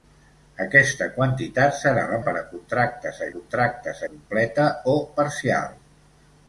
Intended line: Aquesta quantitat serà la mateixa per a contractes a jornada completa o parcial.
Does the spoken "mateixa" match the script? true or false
false